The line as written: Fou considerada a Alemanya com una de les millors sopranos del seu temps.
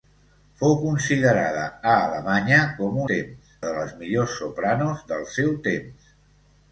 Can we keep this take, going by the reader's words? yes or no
no